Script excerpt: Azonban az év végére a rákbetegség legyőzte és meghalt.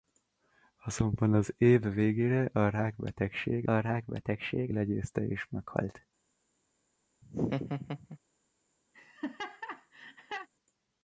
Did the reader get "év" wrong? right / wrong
right